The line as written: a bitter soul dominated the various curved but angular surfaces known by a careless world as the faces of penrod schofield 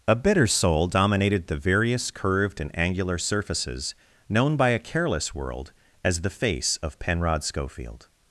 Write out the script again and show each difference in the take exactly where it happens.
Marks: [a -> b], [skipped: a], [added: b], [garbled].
a bitter soul dominated the various curved [but -> and] angular surfaces known by a careless world as the [faces -> face] of penrod schofield